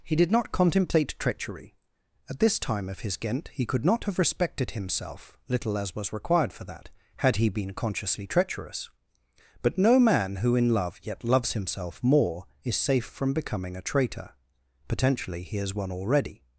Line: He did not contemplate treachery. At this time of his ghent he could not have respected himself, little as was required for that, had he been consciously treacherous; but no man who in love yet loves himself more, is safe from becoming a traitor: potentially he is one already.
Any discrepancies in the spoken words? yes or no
no